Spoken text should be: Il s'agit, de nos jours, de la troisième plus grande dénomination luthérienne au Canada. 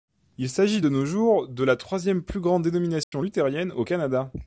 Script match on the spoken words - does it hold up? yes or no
yes